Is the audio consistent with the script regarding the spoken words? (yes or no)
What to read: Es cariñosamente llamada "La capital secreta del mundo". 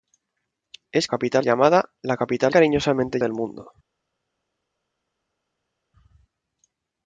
no